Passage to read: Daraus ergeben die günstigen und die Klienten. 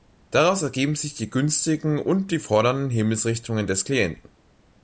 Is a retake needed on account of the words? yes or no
yes